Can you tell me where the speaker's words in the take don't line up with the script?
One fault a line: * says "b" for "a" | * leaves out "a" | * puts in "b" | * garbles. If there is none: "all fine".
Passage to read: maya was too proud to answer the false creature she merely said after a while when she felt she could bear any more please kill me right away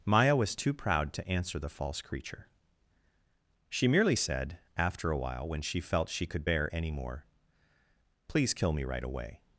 all fine